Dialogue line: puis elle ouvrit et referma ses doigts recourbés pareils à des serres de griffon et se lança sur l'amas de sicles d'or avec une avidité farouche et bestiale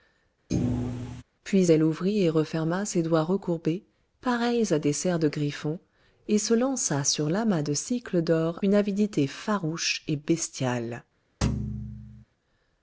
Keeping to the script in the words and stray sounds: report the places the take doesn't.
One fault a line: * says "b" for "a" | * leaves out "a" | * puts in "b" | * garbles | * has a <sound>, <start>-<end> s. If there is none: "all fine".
* has a thud, 0.5-1.2 s
* leaves out "avec"
* has a thud, 11.4-12.2 s